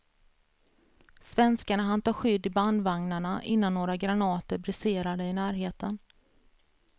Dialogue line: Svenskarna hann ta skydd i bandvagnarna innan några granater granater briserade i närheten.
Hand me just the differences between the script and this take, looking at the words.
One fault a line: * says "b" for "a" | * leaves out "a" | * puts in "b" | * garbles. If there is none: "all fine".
* leaves out "granater"